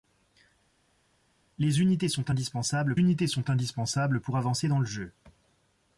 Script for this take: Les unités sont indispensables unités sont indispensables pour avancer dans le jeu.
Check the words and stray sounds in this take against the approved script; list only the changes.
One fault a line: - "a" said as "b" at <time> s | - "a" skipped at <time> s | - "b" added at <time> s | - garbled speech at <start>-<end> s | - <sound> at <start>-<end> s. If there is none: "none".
none